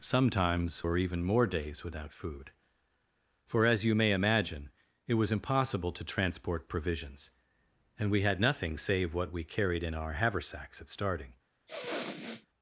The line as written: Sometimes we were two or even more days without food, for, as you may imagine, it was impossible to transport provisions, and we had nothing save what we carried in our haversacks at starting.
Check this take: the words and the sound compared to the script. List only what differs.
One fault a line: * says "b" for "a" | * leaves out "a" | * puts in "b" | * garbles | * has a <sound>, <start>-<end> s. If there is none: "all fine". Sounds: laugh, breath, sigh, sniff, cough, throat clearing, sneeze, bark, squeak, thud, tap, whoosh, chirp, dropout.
* leaves out "we were two"
* has a sniff, 11.7-12.5 s